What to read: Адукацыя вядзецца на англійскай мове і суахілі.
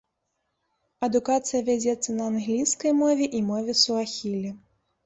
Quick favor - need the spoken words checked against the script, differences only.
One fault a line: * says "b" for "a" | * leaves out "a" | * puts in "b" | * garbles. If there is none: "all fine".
* puts in "мове"